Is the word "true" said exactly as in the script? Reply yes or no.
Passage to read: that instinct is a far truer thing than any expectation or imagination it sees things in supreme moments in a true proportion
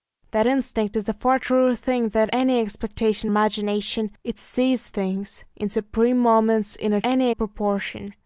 no